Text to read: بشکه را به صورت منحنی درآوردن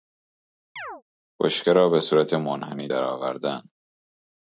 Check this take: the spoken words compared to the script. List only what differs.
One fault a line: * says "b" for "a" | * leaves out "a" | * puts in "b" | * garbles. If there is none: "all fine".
all fine